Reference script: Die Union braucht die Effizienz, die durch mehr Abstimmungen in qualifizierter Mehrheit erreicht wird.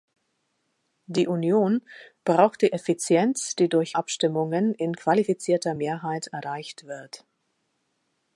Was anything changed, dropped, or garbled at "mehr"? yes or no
yes